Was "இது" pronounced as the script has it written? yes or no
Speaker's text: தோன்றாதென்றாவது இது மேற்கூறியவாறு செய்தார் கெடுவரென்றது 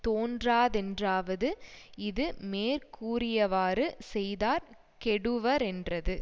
yes